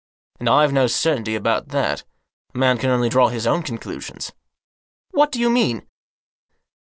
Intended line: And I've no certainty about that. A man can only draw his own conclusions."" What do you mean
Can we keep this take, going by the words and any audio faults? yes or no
yes